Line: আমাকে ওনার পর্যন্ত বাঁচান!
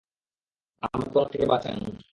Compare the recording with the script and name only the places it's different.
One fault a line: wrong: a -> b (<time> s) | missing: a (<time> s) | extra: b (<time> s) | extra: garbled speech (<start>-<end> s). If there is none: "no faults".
wrong: পর্যন্ত -> থেকে (1.3 s)